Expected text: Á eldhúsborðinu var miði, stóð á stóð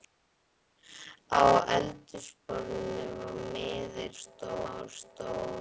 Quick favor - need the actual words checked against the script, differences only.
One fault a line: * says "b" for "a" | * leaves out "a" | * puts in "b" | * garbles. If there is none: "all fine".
all fine